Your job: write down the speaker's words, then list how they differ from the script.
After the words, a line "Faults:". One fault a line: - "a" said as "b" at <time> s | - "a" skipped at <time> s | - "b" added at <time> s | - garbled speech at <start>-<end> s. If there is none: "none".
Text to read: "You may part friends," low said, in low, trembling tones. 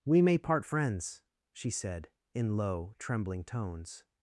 "We may part friends," she said, in low, trembling tones.
Faults:
- "You" said as "We" at 0.0 s
- "low" said as "she" at 1.5 s